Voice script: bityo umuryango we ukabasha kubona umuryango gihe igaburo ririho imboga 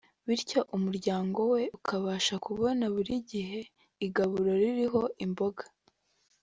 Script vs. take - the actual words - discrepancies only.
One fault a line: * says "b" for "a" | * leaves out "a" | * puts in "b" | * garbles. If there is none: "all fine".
* says "buri" for "umuryango"